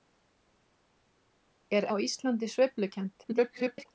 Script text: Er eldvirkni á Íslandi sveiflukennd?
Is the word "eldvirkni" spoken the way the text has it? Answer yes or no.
no